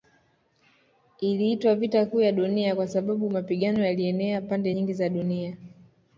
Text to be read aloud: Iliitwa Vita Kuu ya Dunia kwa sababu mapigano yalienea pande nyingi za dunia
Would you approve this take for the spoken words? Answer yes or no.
yes